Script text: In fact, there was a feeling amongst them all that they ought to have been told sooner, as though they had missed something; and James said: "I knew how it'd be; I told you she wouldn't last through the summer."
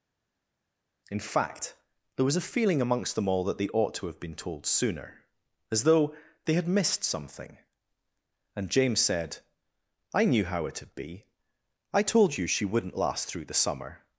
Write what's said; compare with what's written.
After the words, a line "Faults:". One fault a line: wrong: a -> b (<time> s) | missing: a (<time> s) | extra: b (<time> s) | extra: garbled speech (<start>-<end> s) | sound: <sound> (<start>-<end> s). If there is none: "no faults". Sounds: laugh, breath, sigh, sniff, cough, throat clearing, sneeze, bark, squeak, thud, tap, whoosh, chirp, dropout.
In fact, there was a feeling amongst them all that they ought to have been told sooner, as though they had missed something; and James said: "I knew how it'd be; I told you she wouldn't last through the summer."
Faults:
no faults